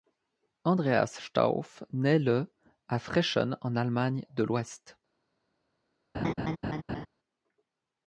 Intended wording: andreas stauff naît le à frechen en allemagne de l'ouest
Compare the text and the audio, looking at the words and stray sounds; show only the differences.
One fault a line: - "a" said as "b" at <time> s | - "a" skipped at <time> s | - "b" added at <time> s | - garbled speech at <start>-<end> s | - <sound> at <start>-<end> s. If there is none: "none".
- laugh at 6.1-7.1 s